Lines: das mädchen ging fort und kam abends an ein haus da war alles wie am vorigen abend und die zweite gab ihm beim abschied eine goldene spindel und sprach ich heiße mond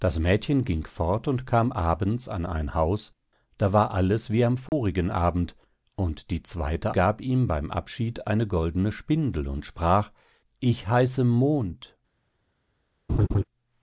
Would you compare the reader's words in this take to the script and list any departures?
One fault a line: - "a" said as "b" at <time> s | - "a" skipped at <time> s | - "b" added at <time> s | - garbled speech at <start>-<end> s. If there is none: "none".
none